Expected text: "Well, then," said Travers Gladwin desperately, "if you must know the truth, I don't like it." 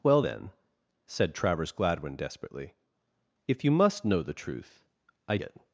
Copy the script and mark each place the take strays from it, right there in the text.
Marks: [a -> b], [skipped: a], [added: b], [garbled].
"Well, then," said Travers Gladwin desperately, "if you must know the truth, I [skipped: don't like] it."